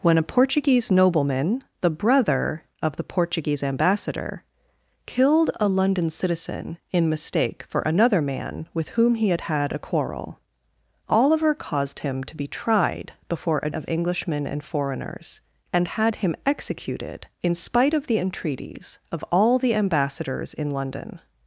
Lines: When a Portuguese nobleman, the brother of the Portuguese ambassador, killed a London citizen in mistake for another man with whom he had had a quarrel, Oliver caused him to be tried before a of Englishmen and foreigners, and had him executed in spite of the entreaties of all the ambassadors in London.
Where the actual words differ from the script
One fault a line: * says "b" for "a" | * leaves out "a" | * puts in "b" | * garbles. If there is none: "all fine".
all fine